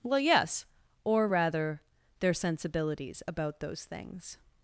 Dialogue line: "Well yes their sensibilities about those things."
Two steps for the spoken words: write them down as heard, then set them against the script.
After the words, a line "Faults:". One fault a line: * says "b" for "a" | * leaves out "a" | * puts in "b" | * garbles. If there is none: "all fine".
"Well yes or rather, their sensibilities about those things."
Faults:
* puts in "or rather"